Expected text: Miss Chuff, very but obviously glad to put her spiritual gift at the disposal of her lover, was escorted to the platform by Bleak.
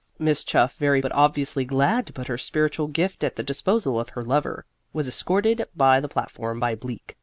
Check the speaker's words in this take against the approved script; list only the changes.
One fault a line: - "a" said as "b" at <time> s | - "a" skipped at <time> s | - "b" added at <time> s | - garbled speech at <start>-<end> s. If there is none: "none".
none